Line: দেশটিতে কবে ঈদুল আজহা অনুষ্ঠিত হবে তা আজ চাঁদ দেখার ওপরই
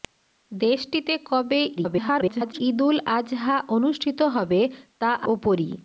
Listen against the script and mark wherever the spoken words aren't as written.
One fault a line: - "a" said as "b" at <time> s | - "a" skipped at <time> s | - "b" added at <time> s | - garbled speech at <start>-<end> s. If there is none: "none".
- garbled speech at 1.8-2.6 s
- "আজ চাঁদ দেখার" skipped at 5.1 s